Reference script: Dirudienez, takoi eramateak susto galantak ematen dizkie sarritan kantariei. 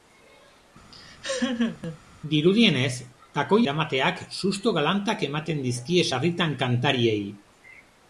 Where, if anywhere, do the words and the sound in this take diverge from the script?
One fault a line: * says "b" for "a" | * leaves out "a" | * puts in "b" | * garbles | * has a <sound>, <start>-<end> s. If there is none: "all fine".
* has a laugh, 0.9-2.0 s